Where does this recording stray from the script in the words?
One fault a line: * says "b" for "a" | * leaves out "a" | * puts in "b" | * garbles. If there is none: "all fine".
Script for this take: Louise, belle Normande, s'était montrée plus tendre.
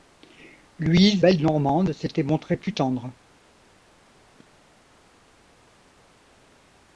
all fine